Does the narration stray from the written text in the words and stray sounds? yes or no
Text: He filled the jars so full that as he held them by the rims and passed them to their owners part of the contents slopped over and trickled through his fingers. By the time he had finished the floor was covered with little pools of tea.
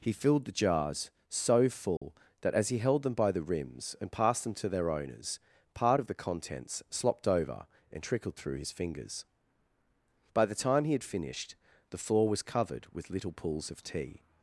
yes